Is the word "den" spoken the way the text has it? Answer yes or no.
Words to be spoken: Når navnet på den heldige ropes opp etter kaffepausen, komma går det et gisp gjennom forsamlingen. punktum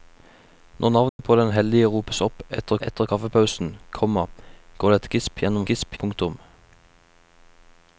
yes